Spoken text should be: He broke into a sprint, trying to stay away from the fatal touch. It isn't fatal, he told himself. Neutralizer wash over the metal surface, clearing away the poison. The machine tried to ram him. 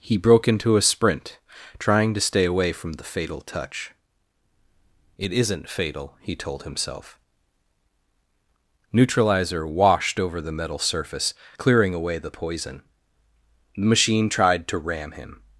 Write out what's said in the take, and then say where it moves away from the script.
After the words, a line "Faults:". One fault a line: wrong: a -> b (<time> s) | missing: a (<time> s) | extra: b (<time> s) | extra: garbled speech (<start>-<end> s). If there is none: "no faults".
He broke into a sprint, trying to stay away from the fatal touch. It isn't fatal, he told himself. Neutralizer washed over the metal surface, clearing away the poison. The machine tried to ram him.
Faults:
wrong: wash -> washed (9.7 s)